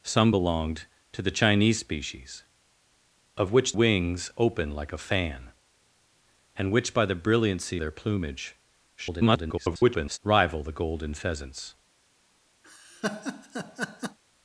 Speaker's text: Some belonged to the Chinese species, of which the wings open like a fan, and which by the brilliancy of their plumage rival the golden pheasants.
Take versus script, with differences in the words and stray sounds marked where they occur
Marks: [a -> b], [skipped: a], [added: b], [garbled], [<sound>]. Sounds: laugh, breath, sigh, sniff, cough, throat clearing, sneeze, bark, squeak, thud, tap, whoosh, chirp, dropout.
Some belonged to the Chinese species, of which [skipped: the] wings open like a fan, and which by the brilliancy [skipped: of] their plumage [garbled] rival the golden pheasants. [laugh]